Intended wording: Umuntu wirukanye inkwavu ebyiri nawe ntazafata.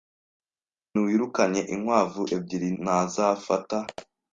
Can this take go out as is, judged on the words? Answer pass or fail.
fail